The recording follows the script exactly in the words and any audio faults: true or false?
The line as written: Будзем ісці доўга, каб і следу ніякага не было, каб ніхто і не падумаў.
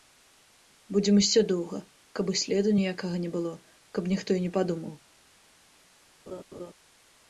false